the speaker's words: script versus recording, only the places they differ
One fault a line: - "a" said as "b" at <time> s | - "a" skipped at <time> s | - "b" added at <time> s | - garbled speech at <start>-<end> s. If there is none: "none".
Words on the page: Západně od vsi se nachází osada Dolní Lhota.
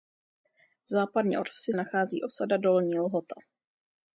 - "se" skipped at 1.7 s